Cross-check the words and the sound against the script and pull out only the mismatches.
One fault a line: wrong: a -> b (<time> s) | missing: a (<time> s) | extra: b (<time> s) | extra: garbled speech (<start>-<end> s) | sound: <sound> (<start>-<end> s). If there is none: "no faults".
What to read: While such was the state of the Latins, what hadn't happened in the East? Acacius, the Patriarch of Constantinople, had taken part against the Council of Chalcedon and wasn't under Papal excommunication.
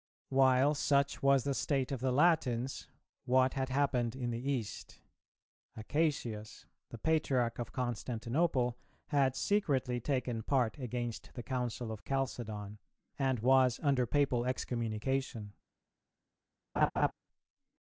wrong: hadn't -> had (3.5 s)
extra: secretly (9.3 s)
wrong: wasn't -> was (13.4 s)
sound: laugh (16.8-17.1 s)